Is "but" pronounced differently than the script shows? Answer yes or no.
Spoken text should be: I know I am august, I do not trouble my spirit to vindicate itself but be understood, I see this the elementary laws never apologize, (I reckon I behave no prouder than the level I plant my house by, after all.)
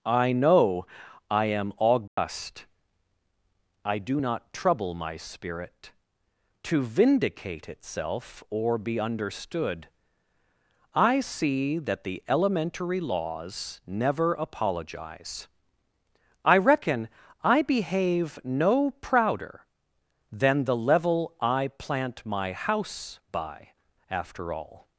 yes